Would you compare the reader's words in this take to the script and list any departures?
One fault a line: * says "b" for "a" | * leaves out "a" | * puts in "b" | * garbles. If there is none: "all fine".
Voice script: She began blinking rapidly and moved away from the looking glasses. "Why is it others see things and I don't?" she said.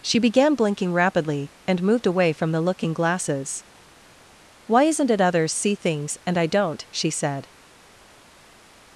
* says "isn't" for "is"